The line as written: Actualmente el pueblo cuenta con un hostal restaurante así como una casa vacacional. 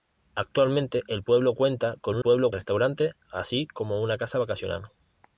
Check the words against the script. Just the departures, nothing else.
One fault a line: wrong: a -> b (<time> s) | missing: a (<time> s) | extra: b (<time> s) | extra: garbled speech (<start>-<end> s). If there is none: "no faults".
wrong: hostal -> pueblo (2.2 s)